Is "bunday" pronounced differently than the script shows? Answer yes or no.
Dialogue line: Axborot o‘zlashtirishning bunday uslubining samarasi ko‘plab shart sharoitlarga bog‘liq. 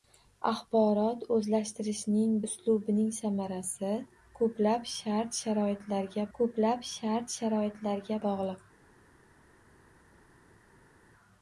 yes